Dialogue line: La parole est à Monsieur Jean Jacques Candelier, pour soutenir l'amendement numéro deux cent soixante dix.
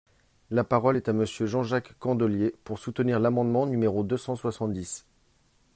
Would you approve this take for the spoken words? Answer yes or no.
yes